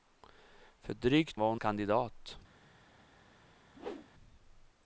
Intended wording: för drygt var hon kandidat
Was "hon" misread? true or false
false